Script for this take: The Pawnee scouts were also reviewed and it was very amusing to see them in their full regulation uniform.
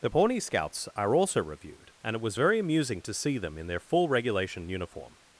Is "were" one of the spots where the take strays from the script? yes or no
yes